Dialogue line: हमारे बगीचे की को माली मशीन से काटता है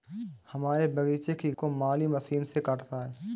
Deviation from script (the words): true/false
false